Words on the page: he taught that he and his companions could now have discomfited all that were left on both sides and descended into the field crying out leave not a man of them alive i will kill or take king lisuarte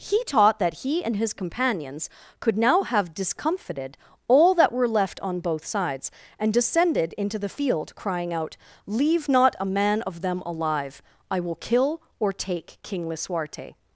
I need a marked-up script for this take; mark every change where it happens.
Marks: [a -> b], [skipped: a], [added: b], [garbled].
he taught that he and his companions could now have discomfited all that were left on both sides and descended into the field crying out leave not a man of them alive i will kill or take king lisuarte